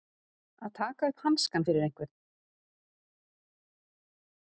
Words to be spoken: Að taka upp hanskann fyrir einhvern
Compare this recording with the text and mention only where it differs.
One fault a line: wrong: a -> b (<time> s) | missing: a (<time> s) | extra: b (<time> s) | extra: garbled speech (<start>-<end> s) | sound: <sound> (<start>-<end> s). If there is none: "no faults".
no faults